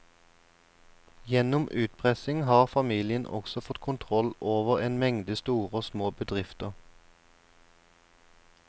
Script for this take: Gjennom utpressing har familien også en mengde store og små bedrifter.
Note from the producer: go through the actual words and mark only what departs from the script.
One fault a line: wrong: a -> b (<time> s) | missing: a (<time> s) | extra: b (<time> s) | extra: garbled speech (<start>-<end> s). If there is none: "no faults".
extra: fått kontroll over (3.7 s)